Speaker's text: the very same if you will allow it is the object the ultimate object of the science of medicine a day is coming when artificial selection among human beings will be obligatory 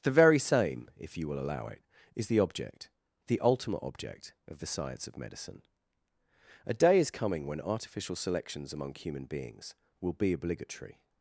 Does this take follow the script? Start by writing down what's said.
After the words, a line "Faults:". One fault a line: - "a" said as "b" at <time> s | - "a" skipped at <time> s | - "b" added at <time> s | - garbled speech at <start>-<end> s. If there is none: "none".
the very same if you will allow it is the object the ultimate object of the science of medicine a day is coming when artificial selections among human beings will be obligatory
Faults:
- "selection" said as "selections" at 8.1 s